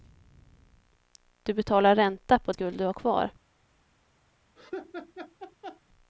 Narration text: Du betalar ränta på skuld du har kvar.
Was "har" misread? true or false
false